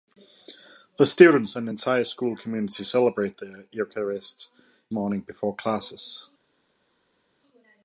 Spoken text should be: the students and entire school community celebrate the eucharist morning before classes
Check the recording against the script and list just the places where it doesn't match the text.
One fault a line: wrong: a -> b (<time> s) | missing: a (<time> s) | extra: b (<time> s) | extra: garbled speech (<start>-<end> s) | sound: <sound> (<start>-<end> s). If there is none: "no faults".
no faults